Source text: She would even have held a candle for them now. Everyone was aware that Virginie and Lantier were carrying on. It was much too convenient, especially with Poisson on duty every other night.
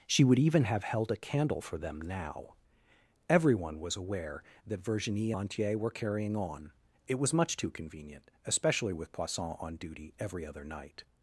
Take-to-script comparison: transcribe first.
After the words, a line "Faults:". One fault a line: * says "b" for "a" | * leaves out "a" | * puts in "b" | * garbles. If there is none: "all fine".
She would even have held a candle for them now. Everyone was aware that Virginie Lantier were carrying on. It was much too convenient, especially with Poisson on duty every other night.
Faults:
* leaves out "and"